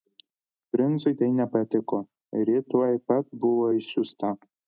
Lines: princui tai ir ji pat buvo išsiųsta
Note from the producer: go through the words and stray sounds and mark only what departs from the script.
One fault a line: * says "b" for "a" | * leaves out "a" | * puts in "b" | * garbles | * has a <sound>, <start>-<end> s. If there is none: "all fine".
* puts in "nepatiko"
* puts in "tuoj"